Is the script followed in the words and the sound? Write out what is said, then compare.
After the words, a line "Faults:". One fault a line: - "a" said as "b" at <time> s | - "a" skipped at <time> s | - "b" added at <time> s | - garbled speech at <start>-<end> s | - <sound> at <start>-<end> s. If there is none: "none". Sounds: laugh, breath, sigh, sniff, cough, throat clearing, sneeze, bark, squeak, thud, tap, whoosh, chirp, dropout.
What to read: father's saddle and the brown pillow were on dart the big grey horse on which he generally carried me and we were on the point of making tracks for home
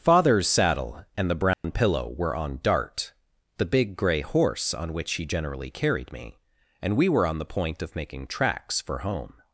father's saddle and the brown pillow were on dart the big grey horse on which he generally carried me and we were on the point of making tracks for home
Faults:
- dropout at 1.5-1.6 s